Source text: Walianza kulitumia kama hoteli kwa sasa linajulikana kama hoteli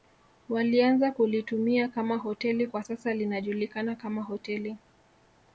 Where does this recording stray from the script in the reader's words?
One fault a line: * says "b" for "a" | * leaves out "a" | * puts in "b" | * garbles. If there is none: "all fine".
all fine